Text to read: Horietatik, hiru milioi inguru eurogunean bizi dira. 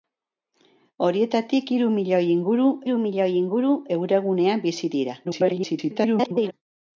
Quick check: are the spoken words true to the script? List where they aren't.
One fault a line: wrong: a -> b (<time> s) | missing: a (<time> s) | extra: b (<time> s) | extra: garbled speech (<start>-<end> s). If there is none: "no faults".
extra: hiru milioi inguru (2.8 s)
extra: garbled speech (5.2-6.5 s)